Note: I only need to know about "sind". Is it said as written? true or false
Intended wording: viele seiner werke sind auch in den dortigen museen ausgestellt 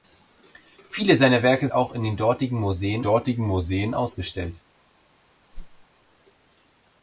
false